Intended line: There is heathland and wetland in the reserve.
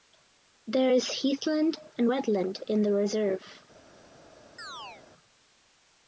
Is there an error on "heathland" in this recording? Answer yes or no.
no